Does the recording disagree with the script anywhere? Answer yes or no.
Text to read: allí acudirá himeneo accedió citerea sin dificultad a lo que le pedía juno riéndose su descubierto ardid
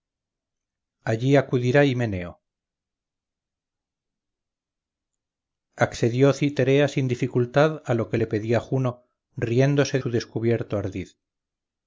no